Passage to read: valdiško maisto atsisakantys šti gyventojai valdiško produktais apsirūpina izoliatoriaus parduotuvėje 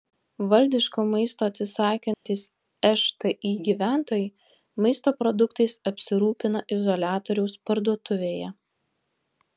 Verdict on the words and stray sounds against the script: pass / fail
fail